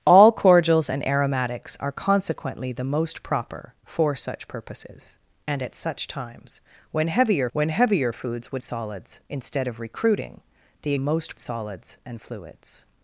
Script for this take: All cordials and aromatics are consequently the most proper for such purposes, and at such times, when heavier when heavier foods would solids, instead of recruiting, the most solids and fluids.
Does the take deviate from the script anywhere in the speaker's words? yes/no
no